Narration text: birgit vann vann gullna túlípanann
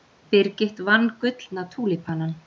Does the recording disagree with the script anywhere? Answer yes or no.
yes